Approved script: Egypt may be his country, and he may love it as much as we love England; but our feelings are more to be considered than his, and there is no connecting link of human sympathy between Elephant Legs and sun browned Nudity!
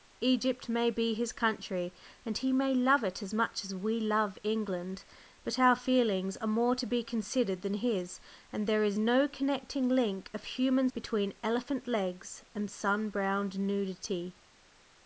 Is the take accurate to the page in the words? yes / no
no